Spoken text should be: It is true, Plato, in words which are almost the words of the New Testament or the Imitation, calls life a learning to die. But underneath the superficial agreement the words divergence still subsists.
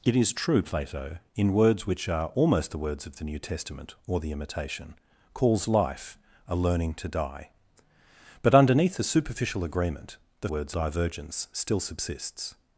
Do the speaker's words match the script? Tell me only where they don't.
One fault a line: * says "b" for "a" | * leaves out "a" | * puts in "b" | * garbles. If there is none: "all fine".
all fine